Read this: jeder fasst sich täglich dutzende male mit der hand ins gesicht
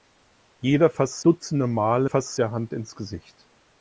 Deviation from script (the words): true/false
true